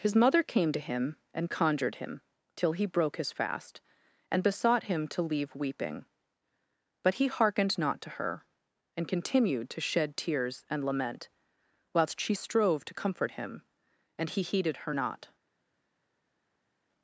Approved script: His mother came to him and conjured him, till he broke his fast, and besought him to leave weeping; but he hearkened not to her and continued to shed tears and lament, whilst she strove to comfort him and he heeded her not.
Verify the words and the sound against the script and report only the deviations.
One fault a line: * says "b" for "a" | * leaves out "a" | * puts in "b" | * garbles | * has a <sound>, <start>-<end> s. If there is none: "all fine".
all fine